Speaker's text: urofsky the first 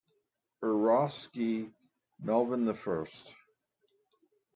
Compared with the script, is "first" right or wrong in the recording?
right